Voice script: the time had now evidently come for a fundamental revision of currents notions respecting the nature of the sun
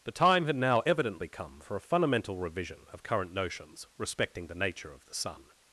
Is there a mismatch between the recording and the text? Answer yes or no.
yes